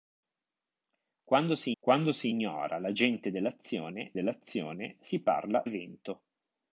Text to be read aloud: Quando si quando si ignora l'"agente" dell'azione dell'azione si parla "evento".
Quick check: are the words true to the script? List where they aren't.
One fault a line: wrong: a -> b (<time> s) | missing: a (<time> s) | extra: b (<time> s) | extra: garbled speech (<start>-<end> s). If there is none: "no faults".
no faults